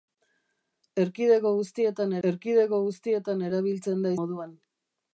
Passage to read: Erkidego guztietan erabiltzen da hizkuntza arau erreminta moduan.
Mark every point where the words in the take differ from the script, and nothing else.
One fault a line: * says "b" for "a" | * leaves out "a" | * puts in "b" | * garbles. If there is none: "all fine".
* puts in "erkidego guztietan"
* leaves out "hizkuntza arau erreminta"